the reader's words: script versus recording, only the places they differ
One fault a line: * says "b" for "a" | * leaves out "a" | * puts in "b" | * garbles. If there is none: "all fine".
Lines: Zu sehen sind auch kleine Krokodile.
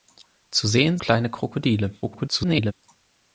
* leaves out "sind auch"
* garbles